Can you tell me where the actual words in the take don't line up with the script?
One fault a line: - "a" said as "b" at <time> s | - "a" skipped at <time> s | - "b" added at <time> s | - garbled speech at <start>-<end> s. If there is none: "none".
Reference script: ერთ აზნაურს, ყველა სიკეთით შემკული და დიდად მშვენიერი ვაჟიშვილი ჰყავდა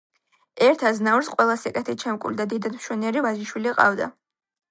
none